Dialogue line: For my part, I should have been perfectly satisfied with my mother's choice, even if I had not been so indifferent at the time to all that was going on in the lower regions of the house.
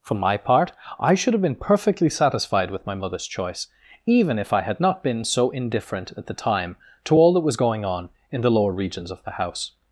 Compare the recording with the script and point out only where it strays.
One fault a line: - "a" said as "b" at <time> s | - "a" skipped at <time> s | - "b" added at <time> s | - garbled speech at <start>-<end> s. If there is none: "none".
none